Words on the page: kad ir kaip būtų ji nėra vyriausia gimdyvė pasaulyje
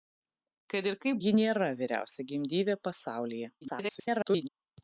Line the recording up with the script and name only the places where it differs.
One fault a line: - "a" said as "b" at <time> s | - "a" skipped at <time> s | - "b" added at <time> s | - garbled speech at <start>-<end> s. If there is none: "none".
- "būtų" skipped at 1.2 s
- garbled speech at 3.6-4.5 s